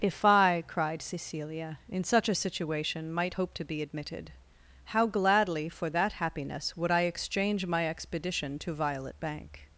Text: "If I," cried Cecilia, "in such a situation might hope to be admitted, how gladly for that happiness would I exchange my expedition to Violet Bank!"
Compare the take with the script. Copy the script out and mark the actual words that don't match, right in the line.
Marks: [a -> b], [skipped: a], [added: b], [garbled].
"If I," cried Cecilia, "in such a situation might hope to be admitted, how gladly for that happiness would I exchange my expedition to Violet Bank!"